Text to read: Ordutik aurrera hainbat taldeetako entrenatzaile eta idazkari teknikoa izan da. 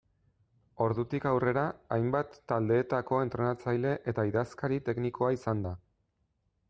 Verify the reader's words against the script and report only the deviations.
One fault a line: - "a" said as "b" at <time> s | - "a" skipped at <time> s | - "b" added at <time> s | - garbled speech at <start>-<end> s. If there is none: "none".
none